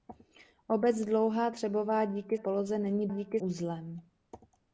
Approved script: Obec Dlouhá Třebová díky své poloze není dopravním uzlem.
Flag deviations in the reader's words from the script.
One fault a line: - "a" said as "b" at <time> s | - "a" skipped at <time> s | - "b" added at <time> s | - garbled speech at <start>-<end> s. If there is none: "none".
- "své" skipped at 2.4 s
- "dopravním" said as "díky" at 3.1 s